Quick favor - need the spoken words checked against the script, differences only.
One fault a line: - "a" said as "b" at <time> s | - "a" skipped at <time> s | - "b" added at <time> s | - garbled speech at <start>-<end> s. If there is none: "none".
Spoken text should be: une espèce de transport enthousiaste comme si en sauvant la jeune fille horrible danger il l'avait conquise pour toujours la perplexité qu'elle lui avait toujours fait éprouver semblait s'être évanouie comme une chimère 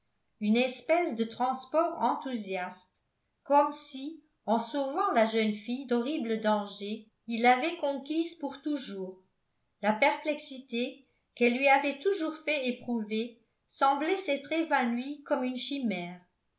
none